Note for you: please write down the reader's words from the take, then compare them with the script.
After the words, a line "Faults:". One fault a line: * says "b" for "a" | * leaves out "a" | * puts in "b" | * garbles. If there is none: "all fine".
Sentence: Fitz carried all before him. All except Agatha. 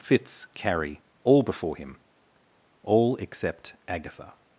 Fitz carrie all before him. All except Agatha.
Faults:
* says "carrie" for "carried"